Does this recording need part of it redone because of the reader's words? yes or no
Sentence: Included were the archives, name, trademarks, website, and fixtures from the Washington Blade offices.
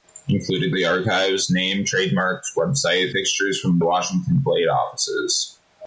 yes